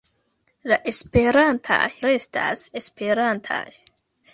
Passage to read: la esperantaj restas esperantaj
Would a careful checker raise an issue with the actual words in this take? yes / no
no